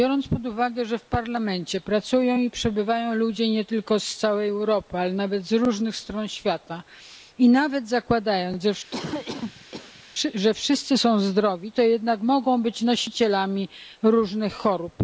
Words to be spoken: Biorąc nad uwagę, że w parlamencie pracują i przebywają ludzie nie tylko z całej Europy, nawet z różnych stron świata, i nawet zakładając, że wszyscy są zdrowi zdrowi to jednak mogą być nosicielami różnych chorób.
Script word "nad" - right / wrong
wrong